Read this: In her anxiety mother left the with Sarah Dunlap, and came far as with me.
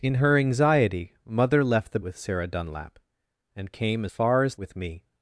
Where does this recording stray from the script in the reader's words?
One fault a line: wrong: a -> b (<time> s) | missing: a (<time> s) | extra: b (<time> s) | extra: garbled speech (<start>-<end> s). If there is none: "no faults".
no faults